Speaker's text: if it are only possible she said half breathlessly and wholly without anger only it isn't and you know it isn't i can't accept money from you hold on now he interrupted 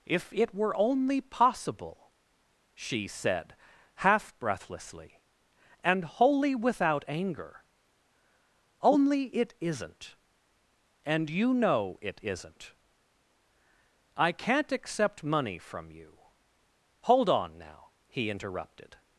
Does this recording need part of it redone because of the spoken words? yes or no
yes